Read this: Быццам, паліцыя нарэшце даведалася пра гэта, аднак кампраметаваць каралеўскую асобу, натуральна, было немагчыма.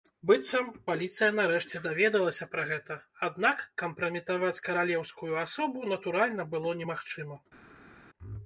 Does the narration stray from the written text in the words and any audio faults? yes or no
no